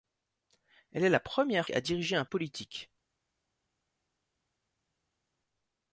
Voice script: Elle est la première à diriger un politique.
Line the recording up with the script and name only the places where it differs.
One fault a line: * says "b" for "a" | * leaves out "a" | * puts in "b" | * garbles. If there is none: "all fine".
all fine